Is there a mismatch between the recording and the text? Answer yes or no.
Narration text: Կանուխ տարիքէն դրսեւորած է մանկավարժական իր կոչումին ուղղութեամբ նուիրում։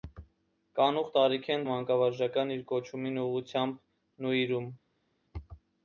yes